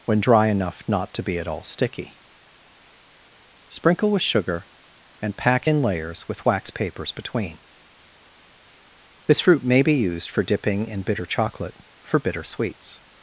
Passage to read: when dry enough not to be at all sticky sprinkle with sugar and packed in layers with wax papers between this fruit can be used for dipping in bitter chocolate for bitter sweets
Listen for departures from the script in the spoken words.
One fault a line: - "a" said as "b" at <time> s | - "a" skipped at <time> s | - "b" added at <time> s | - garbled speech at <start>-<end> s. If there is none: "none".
- "packed" said as "pack" at 5.4 s
- "can" said as "may" at 9.6 s